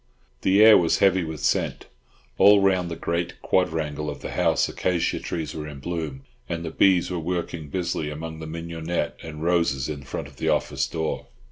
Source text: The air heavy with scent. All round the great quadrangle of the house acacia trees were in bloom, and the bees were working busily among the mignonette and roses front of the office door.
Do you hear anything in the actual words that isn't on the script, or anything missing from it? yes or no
yes